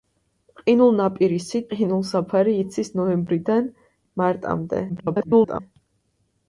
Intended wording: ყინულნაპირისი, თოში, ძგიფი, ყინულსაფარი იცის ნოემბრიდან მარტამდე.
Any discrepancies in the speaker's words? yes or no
yes